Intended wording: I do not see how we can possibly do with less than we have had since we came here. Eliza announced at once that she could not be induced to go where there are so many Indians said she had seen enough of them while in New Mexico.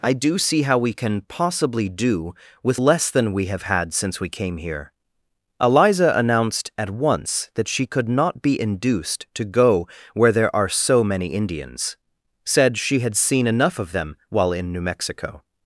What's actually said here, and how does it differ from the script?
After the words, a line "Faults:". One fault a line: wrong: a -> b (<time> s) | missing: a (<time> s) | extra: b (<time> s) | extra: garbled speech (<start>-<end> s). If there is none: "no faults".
I do see how we can possibly do with less than we have had since we came here. Eliza announced at once that she could not be induced to go where there are so many Indians said she had seen enough of them while in New Mexico.
Faults:
missing: not (0.4 s)